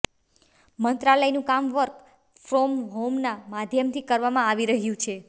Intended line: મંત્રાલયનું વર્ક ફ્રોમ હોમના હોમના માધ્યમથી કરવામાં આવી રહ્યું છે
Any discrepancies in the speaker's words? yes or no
yes